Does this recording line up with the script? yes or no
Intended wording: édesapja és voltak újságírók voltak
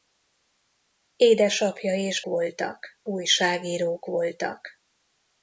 yes